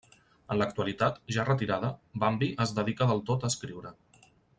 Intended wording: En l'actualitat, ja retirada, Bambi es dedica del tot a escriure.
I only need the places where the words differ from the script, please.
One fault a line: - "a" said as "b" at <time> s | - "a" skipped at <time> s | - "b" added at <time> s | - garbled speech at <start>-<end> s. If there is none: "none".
none